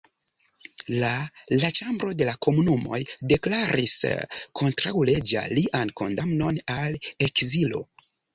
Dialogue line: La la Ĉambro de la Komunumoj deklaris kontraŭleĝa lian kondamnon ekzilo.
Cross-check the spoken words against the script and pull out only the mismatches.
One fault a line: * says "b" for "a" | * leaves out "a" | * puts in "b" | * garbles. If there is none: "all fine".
* puts in "al"